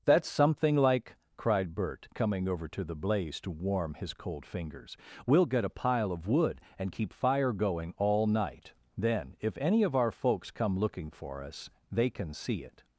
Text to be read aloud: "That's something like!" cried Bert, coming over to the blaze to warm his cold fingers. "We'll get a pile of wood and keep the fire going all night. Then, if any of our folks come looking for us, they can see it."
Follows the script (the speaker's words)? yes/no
no